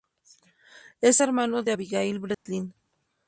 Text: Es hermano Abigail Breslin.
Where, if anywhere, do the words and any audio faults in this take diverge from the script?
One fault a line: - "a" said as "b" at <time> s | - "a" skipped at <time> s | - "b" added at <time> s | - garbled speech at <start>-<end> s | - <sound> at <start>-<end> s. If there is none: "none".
- "de" added at 1.6 s
- dropout at 2.3-2.5 s